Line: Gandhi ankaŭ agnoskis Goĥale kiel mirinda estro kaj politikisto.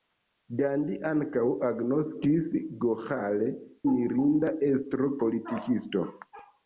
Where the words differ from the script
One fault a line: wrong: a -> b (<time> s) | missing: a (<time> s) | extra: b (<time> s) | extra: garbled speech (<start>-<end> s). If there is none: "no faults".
missing: kiel (3.5 s)
missing: kaj (5.1 s)